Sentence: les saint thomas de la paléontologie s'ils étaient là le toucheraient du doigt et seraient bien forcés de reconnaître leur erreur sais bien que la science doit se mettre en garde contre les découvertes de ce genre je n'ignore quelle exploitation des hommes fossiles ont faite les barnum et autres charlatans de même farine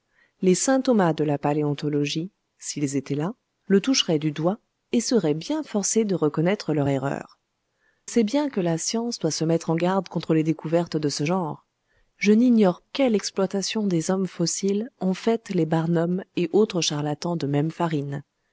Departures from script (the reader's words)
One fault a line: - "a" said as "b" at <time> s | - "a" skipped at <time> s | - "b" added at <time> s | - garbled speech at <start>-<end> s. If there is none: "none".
none